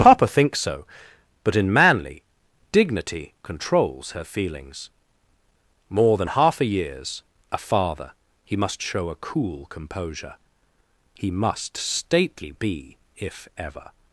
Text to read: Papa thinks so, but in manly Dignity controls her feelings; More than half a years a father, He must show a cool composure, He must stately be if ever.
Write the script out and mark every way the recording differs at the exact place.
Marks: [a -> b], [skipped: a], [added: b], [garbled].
Papa thinks so, but in manly Dignity controls her feelings; More than half a years a father, He must show a cool composure, He must stately be if ever.